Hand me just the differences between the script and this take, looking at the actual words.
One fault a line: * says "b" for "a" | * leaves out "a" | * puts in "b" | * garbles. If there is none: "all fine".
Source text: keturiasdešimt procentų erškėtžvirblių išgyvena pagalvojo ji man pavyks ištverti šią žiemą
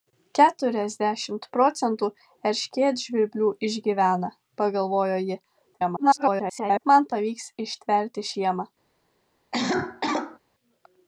* garbles
* leaves out "šią"